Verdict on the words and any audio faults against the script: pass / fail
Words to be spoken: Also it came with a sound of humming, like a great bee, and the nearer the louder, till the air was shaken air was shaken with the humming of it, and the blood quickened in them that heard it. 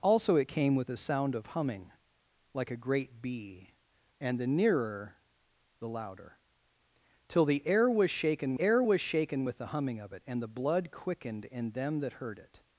pass